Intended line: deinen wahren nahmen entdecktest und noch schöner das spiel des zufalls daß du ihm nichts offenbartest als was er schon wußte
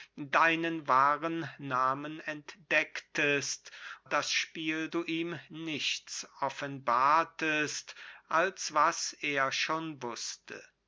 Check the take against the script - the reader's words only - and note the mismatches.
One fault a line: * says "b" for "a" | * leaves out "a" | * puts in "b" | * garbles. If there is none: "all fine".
* leaves out "und noch schöner"
* leaves out "des zufalls daß"